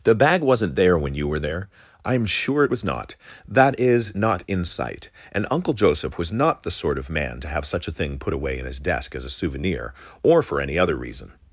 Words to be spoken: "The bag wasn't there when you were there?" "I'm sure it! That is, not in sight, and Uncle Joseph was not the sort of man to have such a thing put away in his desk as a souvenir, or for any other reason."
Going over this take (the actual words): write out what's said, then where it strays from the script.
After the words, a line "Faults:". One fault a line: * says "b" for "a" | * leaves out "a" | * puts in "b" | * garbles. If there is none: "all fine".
"The bag wasn't there when you were there?" "I'm sure it was not! That is, not in sight, and Uncle Joseph was not the sort of man to have such a thing put away in his desk as a souvenir, or for any other reason."
Faults:
* puts in "was not"